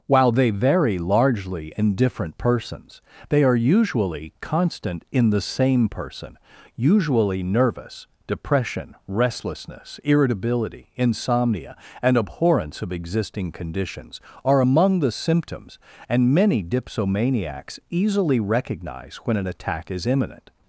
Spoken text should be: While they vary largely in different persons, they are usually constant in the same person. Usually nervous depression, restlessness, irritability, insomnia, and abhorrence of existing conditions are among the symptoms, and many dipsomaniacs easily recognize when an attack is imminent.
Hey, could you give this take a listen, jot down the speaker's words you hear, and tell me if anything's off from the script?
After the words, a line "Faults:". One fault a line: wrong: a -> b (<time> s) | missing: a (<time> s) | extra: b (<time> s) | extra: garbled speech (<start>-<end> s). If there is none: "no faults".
While they vary largely in different persons, they are usually constant in the same person. Usually nervous depression, restlessness, irritability, insomnia, and abhorrence of existing conditions are among the symptoms, and many dipsomaniacs easily recognize when an attack is imminent.
Faults:
no faults